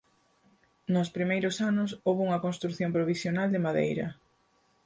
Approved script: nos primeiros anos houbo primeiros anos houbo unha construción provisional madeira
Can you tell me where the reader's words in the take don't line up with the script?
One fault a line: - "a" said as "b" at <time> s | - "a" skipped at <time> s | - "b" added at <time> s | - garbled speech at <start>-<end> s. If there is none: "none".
- "primeiros anos houbo" skipped at 2.2 s
- "de" added at 3.5 s